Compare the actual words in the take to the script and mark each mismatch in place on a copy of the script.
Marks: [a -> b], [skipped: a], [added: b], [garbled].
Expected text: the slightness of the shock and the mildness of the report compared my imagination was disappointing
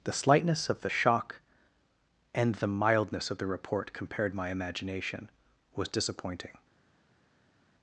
the slightness of the shock and the mildness of the report compared my imagination was disappointing